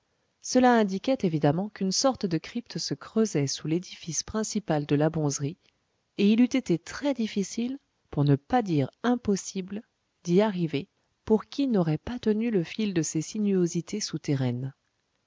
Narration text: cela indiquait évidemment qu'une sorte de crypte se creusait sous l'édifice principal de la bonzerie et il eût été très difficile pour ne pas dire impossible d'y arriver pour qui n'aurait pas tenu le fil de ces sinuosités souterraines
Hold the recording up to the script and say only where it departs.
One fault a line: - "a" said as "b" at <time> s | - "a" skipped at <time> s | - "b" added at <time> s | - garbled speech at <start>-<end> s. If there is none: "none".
none